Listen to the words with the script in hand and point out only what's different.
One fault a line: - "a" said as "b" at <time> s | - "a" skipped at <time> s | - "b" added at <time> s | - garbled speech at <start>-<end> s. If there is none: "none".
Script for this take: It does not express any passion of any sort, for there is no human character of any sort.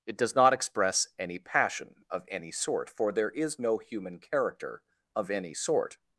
none